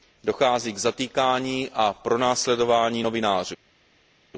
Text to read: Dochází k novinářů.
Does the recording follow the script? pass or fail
fail